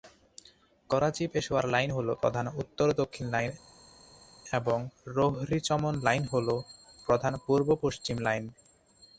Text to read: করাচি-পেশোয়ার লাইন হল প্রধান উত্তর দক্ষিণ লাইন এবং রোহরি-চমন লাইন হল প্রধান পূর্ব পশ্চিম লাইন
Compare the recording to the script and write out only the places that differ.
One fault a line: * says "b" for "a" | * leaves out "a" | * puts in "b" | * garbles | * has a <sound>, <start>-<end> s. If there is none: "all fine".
all fine